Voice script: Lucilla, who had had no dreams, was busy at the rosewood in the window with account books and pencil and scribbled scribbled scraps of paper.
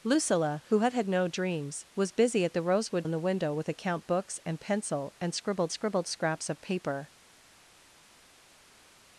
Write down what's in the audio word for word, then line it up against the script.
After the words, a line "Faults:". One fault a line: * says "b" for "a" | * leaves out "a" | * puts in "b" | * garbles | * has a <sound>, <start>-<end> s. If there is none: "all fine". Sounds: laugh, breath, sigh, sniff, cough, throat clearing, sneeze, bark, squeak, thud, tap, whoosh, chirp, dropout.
Lucilla, who had had no dreams, was busy at the rosewood in the window with account books and pencil and scribbled scribbled scraps of paper.
Faults:
all fine